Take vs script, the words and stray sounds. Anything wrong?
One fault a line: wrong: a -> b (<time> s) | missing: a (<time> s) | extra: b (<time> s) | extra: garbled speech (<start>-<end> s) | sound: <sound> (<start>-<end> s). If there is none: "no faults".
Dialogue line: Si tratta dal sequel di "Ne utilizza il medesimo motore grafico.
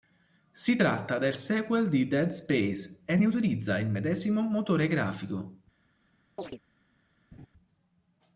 wrong: dal -> del (1.2 s)
extra: Dead Space e (2.1 s)
sound: chirp (6.4-6.6 s)
sound: laugh (7.3-7.5 s)